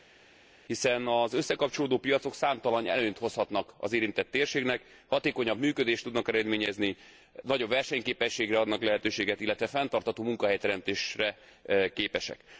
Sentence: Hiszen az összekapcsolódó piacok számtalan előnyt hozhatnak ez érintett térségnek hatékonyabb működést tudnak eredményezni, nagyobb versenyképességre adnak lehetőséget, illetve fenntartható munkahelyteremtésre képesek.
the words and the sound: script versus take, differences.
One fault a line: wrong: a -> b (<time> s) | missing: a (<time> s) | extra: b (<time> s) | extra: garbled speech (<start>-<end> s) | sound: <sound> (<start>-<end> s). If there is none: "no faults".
wrong: ez -> az (3.8 s)